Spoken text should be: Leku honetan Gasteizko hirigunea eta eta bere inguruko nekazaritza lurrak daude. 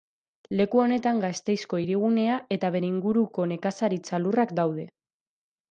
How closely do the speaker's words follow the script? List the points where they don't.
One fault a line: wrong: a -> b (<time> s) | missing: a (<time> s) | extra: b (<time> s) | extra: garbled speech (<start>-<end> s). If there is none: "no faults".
missing: eta (2.7 s)